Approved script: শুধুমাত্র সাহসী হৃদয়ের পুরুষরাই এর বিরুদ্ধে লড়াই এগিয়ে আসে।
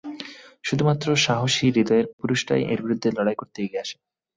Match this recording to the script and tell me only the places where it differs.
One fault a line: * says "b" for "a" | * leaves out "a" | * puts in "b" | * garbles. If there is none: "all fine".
* puts in "করতে"